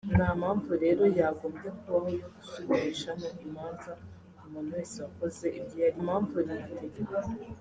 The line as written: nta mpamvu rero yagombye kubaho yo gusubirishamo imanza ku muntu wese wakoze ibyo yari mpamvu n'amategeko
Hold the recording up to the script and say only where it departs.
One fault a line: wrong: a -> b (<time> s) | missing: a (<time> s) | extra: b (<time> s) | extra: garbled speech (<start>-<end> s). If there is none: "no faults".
no faults